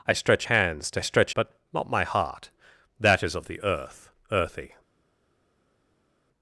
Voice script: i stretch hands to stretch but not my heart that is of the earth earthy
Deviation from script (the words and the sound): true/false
false